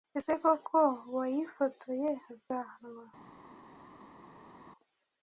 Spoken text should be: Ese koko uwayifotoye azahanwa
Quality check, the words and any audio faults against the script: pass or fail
pass